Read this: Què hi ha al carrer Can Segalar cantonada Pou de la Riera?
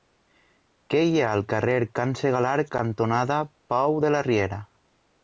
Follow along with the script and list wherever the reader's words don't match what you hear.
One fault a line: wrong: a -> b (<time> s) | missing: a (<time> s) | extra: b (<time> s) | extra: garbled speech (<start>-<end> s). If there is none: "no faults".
no faults